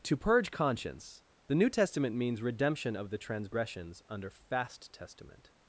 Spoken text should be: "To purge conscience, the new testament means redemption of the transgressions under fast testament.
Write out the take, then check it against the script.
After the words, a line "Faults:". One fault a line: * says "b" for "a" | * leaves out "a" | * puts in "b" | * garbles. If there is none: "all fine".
"To purge conscience, the new testament means redemption of the transgressions under fast testament.
Faults:
all fine